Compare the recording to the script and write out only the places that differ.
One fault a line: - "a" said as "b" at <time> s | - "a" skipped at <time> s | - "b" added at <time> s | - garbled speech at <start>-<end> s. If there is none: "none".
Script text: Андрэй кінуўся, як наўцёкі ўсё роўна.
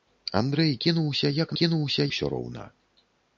- "наўцёкі" said as "кінуўся" at 1.6 s